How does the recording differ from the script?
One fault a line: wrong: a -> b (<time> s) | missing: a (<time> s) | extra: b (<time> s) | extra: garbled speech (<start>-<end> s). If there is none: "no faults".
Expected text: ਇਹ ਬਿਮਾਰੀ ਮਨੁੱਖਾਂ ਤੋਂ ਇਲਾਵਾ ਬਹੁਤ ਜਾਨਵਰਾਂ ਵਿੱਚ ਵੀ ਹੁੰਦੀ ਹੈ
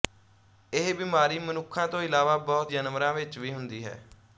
no faults